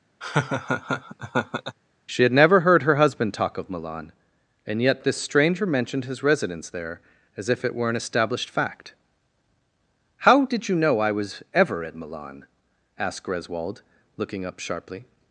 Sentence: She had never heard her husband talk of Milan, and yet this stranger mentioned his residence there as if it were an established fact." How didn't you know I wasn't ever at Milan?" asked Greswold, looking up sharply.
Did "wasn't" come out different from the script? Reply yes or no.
yes